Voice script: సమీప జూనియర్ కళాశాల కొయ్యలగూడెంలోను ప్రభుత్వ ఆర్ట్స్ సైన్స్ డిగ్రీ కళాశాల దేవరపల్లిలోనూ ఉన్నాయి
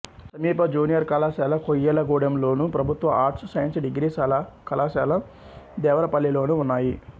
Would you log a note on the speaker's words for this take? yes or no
no